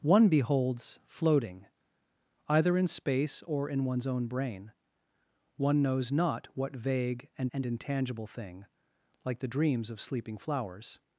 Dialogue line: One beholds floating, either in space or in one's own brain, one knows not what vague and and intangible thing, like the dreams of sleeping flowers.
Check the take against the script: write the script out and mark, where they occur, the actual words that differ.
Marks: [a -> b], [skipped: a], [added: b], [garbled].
One beholds floating, either in space or in one's own brain, one knows not what vague and and intangible thing, like the dreams of sleeping flowers.